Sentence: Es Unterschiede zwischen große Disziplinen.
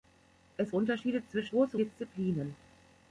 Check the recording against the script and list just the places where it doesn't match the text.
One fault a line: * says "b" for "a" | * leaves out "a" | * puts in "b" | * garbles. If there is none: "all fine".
all fine